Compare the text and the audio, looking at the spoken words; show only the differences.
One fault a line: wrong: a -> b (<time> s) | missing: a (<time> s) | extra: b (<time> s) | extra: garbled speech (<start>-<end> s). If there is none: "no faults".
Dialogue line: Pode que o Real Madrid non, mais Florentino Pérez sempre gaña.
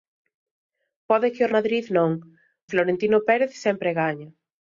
missing: Real (1.5 s)
missing: mais (2.1 s)